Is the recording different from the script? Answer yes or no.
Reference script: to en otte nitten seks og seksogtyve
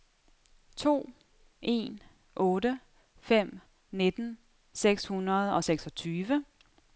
yes